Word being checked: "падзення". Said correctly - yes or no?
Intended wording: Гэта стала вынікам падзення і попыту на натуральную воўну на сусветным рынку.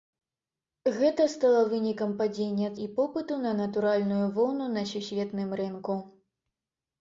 yes